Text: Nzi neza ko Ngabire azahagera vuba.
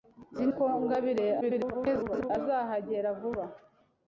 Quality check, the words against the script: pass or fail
fail